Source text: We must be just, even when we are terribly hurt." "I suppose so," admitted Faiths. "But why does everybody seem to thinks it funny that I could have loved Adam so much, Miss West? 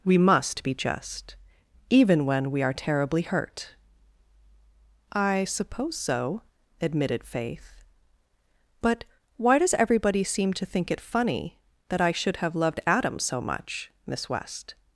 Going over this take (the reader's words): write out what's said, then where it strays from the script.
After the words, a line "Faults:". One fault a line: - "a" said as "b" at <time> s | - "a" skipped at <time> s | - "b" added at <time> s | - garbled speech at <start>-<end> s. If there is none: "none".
We must be just, even when we are terribly hurt." "I suppose so," admitted Faith. "But why does everybody seem to think it funny that I should have loved Adam so much, Miss West?
Faults:
- "Faiths" said as "Faith" at 7.2 s
- "thinks" said as "think" at 10.7 s
- "could" said as "should" at 12.1 s